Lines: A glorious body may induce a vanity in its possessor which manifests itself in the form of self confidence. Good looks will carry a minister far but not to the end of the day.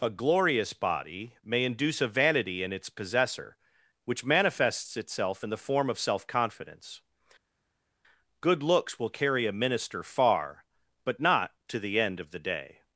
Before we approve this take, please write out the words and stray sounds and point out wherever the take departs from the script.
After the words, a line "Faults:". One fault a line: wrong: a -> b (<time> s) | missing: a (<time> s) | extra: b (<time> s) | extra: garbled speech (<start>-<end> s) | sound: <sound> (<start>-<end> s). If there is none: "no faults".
A glorious body may induce a vanity in its possessor which manifests itself in the form of self confidence. Good looks will carry a minister far but not to the end of the day.
Faults:
no faults